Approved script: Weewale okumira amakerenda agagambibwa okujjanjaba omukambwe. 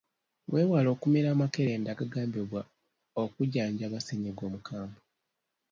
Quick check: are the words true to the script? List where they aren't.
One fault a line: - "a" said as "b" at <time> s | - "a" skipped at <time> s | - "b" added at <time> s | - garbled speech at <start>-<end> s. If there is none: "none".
- "ssennyiga" added at 4.0 s